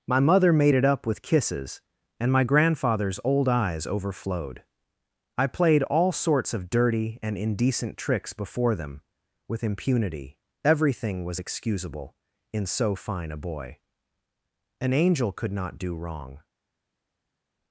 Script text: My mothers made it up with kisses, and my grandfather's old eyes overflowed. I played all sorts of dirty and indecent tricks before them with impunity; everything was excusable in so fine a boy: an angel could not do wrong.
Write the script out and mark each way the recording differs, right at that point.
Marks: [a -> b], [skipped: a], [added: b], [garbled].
My [mothers -> mother] made it up with kisses, and my grandfather's old eyes overflowed. I played all sorts of dirty and indecent tricks before them with impunity; everything was excusable in so fine a boy: an angel could not do wrong.